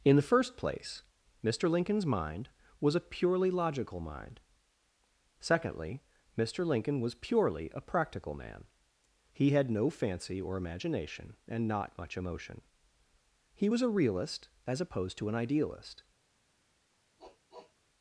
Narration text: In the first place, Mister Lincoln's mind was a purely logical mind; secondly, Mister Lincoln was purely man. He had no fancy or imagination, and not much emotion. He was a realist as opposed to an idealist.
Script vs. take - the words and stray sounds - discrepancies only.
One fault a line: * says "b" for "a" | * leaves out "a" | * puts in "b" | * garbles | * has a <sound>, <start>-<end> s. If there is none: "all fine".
* puts in "a practical"
* has a sniff, 17.2-17.7 s